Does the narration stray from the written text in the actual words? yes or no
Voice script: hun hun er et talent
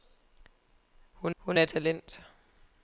no